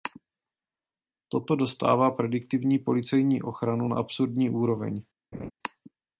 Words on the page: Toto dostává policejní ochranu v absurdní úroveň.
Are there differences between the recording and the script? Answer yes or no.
yes